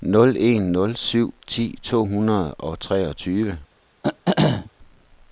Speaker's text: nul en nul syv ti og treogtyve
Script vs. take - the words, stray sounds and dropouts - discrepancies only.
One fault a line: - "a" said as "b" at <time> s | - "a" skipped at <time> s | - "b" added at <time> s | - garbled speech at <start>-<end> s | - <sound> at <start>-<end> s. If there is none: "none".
- "to hundrede" added at 1.8 s
- throat clearing at 4.0-4.7 s